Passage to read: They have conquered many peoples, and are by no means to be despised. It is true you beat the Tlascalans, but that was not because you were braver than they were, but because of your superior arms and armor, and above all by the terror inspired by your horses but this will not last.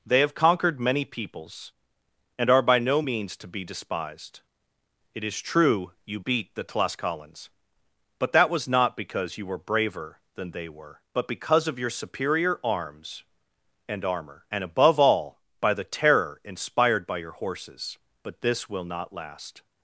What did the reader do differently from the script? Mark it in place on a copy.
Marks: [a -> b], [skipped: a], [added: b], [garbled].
They have conquered many peoples, and are by no means to be despised. It is true you beat the Tlascalans, but that was not because you were braver than they were, but because of your superior arms and armor, and above all by the terror inspired by your horses but this will not last.